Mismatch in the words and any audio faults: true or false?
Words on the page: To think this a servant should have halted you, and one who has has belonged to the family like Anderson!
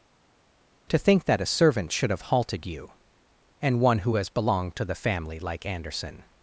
true